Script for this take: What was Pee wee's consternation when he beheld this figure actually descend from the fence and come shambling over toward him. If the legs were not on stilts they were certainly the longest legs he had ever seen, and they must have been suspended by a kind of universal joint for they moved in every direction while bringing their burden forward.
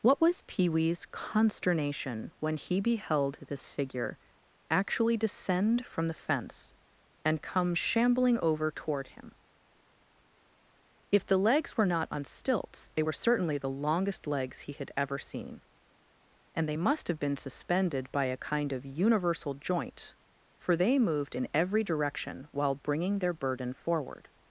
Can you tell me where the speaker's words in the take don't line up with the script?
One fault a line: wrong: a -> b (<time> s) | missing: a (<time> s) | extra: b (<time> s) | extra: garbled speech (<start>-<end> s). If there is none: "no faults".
no faults